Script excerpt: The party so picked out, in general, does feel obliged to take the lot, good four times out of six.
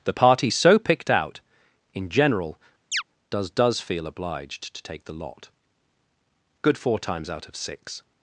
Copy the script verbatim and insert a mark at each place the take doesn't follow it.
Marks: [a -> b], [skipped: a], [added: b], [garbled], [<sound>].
The party so picked out, in general, [chirp] does [added: does] feel obliged to take the lot, good four times out of six.